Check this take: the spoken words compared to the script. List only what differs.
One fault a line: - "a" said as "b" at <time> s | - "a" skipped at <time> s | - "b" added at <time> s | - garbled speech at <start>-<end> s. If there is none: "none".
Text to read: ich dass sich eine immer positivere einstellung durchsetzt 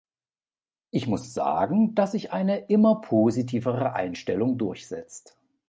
- "muss sagen" added at 1.1 s